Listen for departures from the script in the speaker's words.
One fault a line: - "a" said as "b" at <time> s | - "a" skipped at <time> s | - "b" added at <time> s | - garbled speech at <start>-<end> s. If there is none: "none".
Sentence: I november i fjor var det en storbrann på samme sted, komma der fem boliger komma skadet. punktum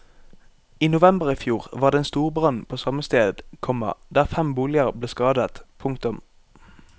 - "komma" said as "ble" at 4.9 s